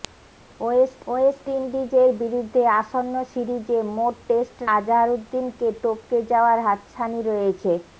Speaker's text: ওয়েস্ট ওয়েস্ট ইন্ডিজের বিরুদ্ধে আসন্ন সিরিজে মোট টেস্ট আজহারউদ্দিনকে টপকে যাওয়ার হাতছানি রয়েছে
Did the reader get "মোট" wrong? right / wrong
right